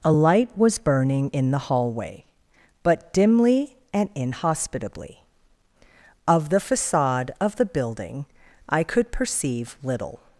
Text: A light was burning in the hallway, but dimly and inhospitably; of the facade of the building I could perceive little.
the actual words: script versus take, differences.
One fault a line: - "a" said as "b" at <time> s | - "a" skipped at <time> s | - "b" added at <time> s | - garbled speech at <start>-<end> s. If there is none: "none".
none